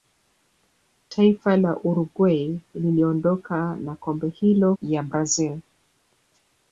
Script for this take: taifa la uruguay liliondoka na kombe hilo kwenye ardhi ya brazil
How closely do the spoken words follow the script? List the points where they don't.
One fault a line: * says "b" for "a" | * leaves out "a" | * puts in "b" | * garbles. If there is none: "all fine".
* leaves out "kwenye ardhi"